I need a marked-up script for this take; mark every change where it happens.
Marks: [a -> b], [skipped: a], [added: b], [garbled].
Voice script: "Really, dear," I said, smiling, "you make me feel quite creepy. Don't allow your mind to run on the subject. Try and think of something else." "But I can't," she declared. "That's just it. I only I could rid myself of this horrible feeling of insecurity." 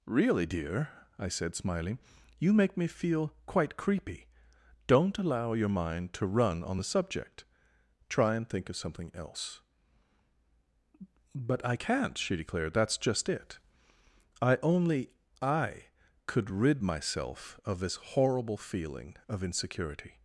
"Really, dear," I said, smiling, "you make me feel quite creepy. Don't allow your mind to run on the subject. Try and think of something else." "But I can't," she declared. "That's just it. I only I could rid myself of this horrible feeling of insecurity."